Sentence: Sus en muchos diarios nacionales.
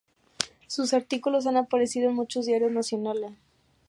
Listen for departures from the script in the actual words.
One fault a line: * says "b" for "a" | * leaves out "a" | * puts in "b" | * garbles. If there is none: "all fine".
* puts in "artículos han aparecido"